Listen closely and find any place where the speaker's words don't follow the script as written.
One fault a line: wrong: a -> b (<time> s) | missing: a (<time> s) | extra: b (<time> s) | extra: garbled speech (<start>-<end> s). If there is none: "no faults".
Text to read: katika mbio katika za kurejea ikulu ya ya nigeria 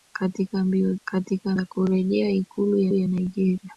no faults